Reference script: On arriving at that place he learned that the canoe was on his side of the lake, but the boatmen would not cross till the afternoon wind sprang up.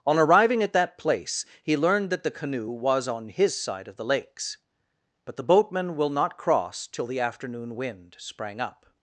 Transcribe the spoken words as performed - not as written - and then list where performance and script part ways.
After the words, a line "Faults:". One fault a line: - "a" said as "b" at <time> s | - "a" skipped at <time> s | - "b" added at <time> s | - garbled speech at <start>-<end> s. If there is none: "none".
On arriving at that place he learned that the canoe was on his side of the lakes, but the boatmen will not cross till the afternoon wind sprang up.
Faults:
- "lake" said as "lakes" at 4.0 s
- "would" said as "will" at 5.9 s